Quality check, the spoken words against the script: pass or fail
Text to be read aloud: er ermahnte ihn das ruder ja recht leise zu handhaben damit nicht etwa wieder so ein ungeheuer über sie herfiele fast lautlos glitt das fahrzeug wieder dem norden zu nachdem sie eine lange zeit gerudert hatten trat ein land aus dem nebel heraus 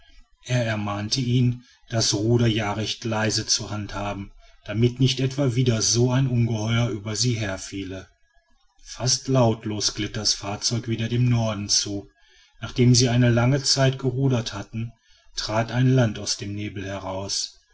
pass